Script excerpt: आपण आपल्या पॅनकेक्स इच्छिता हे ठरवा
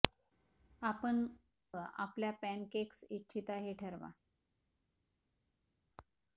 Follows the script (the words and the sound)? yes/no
yes